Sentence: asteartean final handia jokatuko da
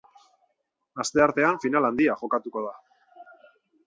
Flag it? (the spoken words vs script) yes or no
no